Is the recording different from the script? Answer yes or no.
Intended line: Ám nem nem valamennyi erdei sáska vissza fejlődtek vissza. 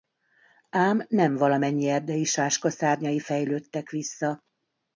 yes